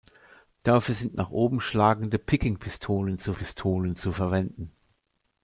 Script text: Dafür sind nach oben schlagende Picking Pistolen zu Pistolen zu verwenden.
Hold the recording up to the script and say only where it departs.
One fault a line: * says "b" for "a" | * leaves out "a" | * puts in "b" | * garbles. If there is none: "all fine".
all fine